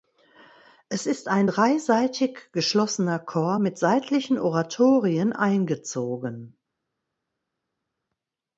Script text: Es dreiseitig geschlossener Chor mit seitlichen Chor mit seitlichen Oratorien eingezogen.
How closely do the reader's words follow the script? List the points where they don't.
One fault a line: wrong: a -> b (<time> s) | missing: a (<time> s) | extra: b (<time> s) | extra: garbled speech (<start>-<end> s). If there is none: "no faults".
extra: ist ein (1.1 s)
missing: Chor mit seitlichen (4.4 s)